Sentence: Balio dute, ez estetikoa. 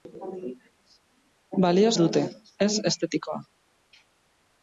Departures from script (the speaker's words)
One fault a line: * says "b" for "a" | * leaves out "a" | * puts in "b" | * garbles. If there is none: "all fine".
all fine